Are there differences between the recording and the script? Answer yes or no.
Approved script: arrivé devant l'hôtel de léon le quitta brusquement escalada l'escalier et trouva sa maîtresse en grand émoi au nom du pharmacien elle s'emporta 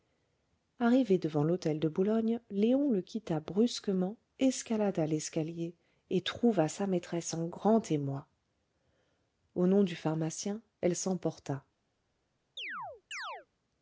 yes